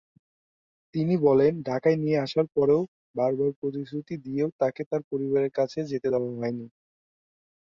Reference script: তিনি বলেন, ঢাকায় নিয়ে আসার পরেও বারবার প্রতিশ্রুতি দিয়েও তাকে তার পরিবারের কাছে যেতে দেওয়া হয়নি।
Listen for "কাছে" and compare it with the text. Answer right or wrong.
right